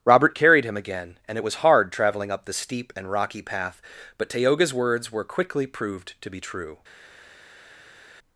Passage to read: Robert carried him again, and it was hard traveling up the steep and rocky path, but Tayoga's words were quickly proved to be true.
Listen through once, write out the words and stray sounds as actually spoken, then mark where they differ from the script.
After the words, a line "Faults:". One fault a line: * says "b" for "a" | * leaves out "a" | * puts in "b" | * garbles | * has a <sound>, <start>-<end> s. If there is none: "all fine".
Robert carried him again, and it was hard traveling up the steep and rocky path, but Tayoga's words were quickly proved to be true.
Faults:
all fine